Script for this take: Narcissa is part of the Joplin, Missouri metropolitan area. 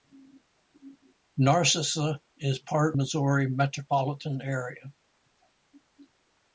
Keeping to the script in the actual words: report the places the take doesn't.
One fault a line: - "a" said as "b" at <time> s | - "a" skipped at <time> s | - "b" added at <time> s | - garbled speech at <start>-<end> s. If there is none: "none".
- "of the Joplin" skipped at 3.0 s